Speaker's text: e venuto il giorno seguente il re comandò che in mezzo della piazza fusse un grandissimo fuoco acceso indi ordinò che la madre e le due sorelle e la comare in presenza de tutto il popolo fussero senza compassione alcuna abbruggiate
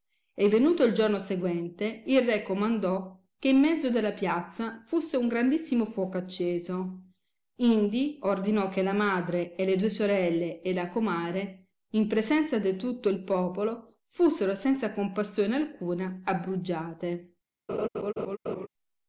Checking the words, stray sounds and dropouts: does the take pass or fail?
fail